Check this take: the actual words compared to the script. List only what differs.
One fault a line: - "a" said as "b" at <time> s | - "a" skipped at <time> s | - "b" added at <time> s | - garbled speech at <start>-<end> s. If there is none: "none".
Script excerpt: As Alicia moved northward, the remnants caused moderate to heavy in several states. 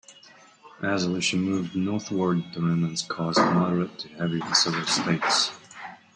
none